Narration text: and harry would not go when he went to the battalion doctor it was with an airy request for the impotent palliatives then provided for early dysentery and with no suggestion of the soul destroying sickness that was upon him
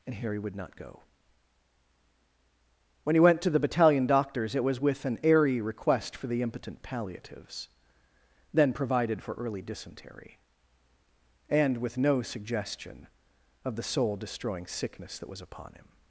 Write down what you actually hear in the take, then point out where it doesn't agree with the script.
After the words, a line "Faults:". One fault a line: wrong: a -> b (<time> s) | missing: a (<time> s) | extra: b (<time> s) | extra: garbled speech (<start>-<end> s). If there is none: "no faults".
and harry would not go when he went to the battalion doctors it was with an airy request for the impotent palliatives then provided for early dysentery and with no suggestion of the soul destroying sickness that was upon him
Faults:
wrong: doctor -> doctors (4.1 s)